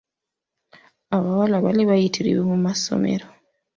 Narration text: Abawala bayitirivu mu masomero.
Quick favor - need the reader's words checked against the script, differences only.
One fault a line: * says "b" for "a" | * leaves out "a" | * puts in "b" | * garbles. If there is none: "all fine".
* puts in "baali"